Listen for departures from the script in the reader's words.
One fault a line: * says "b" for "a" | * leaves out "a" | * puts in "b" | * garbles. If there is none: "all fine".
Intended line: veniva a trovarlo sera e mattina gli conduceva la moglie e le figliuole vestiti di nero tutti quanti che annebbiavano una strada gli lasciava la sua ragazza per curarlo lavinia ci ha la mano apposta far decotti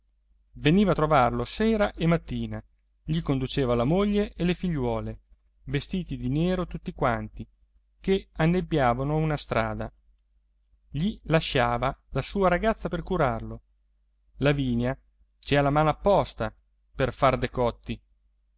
* puts in "per"